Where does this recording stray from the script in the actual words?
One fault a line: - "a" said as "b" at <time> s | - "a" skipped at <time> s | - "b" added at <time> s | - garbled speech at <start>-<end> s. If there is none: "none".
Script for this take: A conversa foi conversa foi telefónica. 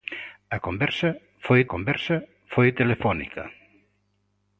none